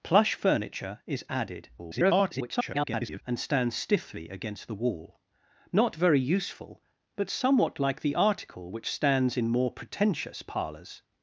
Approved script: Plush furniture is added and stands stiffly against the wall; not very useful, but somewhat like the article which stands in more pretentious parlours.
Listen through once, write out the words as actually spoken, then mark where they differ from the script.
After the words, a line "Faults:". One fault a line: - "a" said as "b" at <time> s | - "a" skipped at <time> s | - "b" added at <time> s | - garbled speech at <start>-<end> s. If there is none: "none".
Plush furniture is added [garbled] and stands stiffly against the wall; not very useful, but somewhat like the article which stands in more pretentious parlours.
Faults:
- garbled speech at 1.8-3.2 s